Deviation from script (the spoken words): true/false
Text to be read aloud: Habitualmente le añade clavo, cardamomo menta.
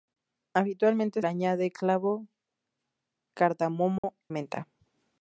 false